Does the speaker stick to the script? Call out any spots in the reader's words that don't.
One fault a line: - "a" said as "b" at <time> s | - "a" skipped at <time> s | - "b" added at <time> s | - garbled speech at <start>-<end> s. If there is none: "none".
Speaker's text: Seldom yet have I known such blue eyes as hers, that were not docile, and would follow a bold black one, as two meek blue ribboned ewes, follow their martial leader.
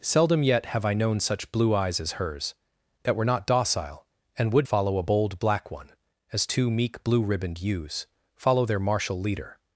none